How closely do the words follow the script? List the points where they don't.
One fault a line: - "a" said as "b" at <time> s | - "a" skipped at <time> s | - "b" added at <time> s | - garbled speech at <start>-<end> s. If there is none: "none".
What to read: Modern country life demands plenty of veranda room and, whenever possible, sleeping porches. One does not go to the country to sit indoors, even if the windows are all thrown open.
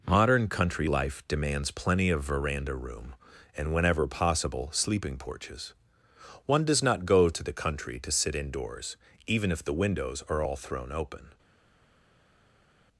none